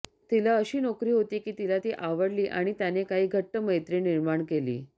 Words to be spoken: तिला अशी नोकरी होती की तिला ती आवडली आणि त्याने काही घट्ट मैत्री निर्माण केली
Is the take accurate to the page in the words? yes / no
yes